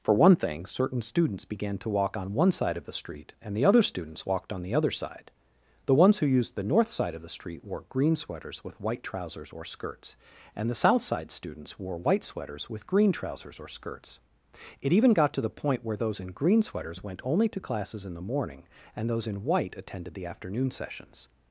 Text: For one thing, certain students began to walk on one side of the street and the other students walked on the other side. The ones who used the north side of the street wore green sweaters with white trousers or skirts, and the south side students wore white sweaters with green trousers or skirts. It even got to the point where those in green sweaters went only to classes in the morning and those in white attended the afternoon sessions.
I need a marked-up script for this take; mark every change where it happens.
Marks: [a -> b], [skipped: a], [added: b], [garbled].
For one thing, certain students began to walk on one side of the street and the other students walked on the other side. The ones who used the north side of the street wore green sweaters with white trousers or skirts, and the south side students wore white sweaters with green trousers or skirts. It even got to the point where those in green sweaters went only to classes in the morning and those in white attended the afternoon sessions.